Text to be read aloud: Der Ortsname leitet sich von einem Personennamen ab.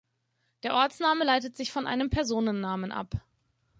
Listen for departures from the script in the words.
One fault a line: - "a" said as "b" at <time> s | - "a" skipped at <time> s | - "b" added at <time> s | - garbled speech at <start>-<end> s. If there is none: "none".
none